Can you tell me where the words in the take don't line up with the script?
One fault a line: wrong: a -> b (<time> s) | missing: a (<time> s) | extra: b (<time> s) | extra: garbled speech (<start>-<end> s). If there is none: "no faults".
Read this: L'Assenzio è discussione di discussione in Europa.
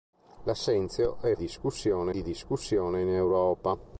no faults